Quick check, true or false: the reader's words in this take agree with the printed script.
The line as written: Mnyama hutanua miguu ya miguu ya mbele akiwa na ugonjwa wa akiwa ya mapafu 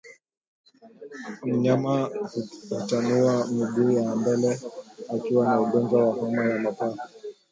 false